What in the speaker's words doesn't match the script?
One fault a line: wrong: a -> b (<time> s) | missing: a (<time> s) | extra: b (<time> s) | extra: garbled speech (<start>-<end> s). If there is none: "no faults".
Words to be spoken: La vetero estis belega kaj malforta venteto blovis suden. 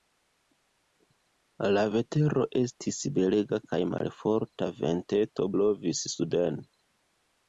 no faults